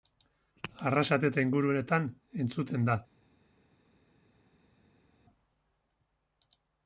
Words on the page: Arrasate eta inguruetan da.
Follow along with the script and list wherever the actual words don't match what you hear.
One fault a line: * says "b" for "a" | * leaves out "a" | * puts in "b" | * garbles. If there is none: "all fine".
* puts in "entzuten"